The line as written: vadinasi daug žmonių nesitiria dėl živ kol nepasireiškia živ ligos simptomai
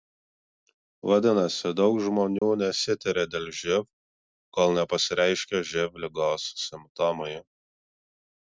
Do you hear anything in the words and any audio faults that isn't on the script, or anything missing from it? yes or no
yes